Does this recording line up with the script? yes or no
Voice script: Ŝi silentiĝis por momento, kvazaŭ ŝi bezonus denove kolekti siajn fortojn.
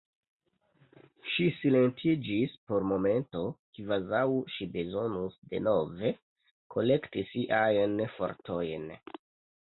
yes